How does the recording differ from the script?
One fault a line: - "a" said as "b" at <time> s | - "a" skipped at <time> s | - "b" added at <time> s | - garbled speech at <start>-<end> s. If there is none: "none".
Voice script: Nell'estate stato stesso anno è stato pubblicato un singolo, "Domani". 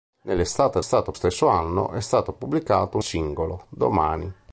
none